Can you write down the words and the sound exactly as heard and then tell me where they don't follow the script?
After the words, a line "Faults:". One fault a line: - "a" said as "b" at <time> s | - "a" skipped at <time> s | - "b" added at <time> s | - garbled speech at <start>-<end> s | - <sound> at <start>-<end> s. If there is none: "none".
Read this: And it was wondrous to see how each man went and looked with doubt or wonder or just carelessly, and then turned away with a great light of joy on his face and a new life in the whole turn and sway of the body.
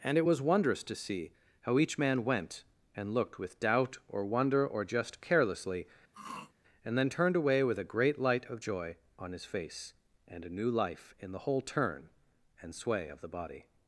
And it was wondrous to see how each man went and looked with doubt or wonder or just carelessly, and then turned away with a great light of joy on his face and a new life in the whole turn and sway of the body.
Faults:
- throat clearing at 6.1-6.5 s